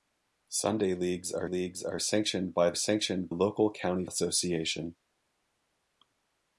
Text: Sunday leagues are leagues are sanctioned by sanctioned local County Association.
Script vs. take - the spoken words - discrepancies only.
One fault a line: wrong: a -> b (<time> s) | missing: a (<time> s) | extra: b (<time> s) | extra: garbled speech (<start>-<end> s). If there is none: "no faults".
no faults